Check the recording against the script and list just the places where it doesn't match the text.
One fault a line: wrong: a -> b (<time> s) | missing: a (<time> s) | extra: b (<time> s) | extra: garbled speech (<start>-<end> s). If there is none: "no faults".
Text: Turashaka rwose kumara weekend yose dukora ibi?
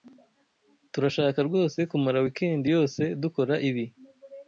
no faults